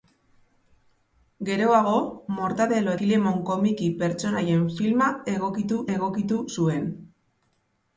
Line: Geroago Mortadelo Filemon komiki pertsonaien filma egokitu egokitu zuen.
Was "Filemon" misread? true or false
false